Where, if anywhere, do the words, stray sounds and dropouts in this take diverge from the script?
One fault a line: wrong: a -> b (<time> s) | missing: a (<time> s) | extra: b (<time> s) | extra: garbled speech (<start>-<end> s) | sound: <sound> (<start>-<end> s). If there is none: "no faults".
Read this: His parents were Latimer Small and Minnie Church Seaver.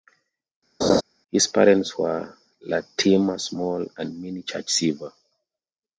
sound: laugh (0.8-1.0 s)